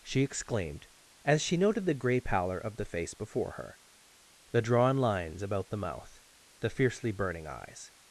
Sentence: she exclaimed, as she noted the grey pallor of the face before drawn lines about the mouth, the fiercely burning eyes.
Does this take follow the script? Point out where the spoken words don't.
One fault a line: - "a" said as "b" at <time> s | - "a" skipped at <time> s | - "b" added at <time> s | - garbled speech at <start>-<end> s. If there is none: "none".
- "her the" added at 3.5 s